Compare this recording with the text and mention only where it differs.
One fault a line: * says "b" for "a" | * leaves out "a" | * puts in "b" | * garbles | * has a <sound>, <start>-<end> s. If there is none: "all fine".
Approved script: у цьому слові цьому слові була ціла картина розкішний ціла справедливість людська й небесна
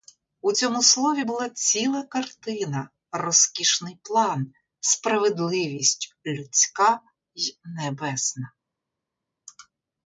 * leaves out "цьому слові"
* says "план" for "ціла"